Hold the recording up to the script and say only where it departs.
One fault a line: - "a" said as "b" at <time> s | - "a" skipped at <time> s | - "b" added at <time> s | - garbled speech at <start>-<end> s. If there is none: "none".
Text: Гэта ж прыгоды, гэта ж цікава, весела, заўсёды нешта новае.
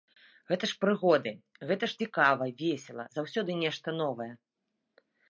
none